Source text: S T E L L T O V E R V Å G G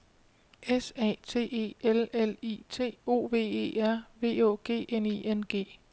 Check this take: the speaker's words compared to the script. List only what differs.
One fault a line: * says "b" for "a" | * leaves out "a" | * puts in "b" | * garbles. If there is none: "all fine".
* puts in "A"
* puts in "I"
* puts in "N I N"